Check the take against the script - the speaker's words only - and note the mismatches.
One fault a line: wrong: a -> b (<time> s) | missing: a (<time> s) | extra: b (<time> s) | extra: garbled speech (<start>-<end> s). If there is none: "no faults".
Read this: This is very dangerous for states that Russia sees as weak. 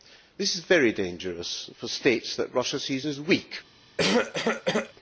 no faults